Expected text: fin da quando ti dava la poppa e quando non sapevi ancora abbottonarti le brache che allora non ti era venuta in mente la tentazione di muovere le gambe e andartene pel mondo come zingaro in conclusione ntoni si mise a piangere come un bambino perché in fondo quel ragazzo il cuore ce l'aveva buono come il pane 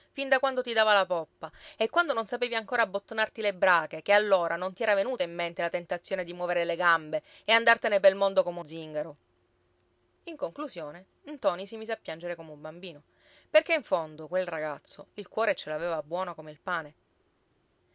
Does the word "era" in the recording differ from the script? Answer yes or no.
no